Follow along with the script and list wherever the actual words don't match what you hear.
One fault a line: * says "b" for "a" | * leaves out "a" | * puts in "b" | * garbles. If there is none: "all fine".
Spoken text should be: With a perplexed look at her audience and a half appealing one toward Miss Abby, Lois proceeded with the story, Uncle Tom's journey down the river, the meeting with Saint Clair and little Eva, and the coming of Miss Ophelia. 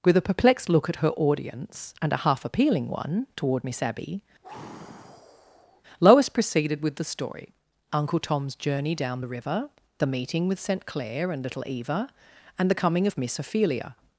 all fine